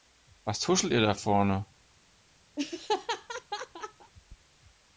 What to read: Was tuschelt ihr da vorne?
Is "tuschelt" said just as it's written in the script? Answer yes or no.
yes